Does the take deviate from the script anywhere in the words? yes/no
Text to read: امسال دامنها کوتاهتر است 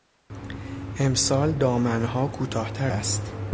no